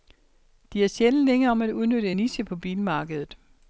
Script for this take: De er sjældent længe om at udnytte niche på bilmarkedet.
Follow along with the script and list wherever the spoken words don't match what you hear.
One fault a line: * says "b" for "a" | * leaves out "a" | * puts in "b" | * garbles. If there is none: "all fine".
all fine